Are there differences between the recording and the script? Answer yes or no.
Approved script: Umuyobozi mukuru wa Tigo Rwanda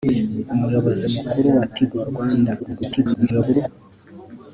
yes